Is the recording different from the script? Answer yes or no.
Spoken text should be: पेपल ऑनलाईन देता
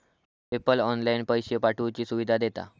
yes